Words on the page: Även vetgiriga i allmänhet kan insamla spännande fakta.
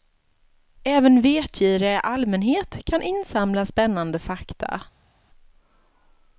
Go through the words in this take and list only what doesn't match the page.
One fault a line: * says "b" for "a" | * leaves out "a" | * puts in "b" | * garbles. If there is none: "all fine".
all fine